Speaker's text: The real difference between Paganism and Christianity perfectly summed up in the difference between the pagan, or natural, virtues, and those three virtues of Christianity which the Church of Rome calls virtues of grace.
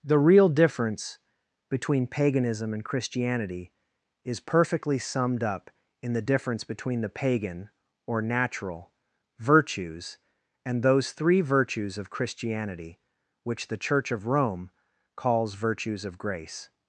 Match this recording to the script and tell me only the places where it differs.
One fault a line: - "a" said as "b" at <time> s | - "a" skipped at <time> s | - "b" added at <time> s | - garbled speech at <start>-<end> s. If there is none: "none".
- "is" added at 4.2 s